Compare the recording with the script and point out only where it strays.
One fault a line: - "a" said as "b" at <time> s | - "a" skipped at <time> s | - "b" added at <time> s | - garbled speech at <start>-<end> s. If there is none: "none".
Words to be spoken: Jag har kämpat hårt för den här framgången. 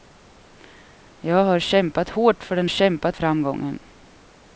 - "här" said as "kämpat" at 2.7 s